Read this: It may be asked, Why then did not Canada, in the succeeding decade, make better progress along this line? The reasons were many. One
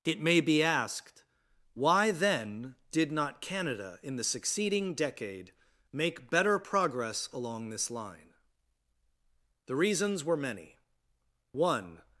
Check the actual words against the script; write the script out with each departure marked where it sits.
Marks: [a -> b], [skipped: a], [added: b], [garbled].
It may be asked, Why then did not Canada, in the succeeding decade, make better progress along this line? The reasons were many. One